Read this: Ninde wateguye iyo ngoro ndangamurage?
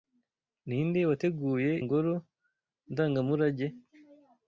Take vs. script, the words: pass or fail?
fail